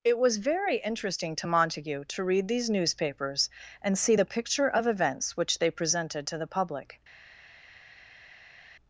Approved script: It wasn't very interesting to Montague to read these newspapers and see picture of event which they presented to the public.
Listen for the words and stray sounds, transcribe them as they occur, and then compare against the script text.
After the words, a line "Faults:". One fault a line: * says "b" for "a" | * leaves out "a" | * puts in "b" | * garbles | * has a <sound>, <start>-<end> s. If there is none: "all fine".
It was very interesting to Montague to read these newspapers and see the picture of events which they presented to the public.
Faults:
* says "was" for "wasn't"
* puts in "the"
* says "events" for "event"